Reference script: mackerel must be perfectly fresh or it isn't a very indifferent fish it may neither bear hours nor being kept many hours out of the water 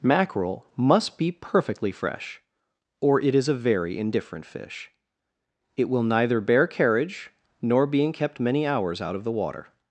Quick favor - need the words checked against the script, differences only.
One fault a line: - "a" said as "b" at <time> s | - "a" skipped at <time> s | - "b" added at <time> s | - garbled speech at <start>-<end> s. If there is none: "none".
- "isn't" said as "is" at 3.4 s
- "may" said as "will" at 5.9 s
- "hours" said as "carriage" at 6.7 s